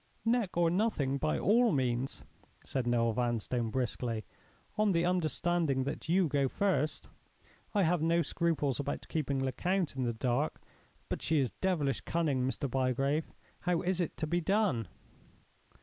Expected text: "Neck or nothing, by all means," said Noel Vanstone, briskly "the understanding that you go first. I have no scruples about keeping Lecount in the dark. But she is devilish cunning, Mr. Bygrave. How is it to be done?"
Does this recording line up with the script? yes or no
no